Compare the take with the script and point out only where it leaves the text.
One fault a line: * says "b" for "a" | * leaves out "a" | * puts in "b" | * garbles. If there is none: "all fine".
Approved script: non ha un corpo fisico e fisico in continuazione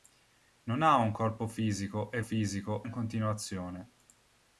all fine